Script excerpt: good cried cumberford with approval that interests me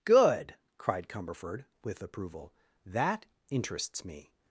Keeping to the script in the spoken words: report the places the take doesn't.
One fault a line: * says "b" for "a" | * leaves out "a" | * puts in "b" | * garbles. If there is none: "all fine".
all fine